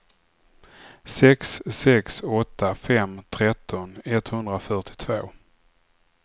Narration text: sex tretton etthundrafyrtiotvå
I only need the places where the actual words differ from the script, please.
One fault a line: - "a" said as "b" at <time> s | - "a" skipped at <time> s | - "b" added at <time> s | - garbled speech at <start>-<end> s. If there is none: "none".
- "sex åtta fem" added at 1.6 s